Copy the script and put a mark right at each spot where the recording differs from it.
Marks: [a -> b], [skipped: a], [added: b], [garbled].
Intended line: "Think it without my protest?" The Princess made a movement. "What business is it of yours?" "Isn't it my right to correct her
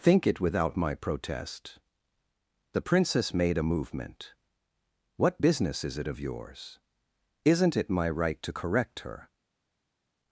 "Think it without my protest?" The Princess made a movement. "What business is it of yours?" "Isn't it my right to correct her